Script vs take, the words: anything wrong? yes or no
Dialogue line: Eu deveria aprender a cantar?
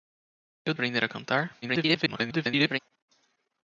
yes